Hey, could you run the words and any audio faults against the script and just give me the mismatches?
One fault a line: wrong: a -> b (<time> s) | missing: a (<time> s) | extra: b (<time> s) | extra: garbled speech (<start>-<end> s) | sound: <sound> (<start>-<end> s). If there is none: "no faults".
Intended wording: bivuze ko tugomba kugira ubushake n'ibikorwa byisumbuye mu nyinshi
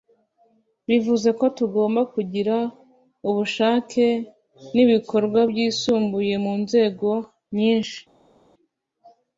extra: nzego (6.6 s)